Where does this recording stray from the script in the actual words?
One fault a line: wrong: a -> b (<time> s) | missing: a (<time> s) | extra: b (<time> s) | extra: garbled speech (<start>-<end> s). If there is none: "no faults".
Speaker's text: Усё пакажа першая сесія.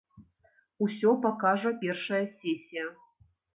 no faults